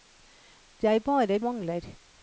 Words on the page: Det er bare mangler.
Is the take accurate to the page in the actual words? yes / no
yes